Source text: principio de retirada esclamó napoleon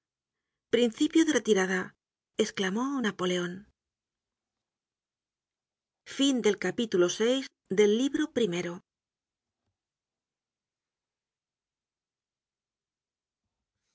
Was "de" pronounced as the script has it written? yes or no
yes